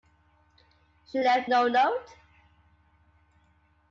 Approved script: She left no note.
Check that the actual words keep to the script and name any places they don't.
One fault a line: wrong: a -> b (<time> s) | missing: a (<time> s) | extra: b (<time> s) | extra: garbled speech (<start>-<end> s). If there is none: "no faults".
no faults